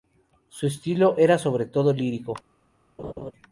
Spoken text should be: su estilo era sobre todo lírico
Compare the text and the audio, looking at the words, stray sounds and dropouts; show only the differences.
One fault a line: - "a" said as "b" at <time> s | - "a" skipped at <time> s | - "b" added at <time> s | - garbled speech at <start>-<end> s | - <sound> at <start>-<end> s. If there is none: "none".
- laugh at 3.0-3.3 s